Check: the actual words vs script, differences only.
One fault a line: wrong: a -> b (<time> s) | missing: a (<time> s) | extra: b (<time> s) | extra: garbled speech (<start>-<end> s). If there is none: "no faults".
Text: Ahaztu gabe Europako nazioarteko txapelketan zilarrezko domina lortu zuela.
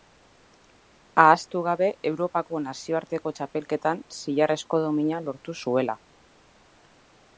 no faults